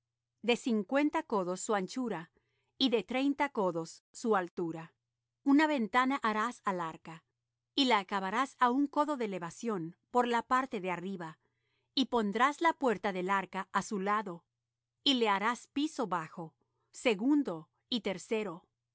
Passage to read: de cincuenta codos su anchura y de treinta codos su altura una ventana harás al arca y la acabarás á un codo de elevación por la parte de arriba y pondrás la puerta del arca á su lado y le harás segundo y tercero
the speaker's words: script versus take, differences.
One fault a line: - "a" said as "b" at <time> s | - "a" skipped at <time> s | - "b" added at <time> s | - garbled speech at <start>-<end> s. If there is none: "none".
- "piso bajo" added at 15.7 s